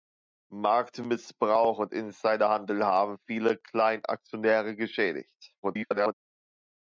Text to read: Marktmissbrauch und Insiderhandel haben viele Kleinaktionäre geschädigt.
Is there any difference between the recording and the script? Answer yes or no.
yes